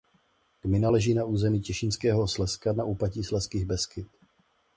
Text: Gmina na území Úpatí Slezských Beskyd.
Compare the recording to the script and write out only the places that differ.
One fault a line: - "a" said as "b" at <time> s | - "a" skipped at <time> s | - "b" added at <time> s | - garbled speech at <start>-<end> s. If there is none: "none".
- "leží" added at 0.9 s
- "Těšínského Slezska na" added at 1.6 s